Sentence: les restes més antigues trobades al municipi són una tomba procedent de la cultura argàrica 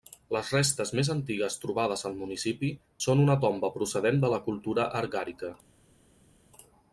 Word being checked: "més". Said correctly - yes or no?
yes